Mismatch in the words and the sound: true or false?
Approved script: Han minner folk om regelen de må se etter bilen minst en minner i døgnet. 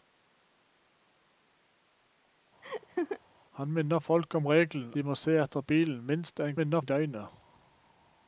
true